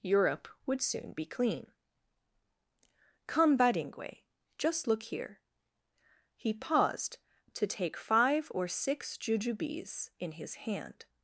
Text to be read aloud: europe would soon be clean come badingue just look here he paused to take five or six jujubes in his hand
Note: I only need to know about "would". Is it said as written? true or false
true